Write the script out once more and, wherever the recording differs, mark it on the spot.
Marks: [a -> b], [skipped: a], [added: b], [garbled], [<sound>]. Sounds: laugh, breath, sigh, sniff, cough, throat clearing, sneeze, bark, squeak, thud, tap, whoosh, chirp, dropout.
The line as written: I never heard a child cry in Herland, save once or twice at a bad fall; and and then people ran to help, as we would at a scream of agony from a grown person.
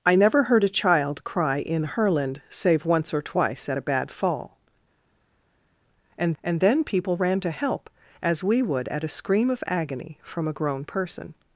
I never heard a child cry in Herland, save once or twice at a bad fall; and and then people ran to help, as we would at a scream of agony from a grown person.